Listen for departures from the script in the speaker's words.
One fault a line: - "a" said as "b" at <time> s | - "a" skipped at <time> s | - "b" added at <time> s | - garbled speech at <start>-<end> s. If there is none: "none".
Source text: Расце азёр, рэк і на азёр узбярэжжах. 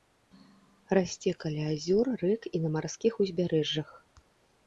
- "каля" added at 1.4 s
- "азёр" said as "марскіх" at 2.8 s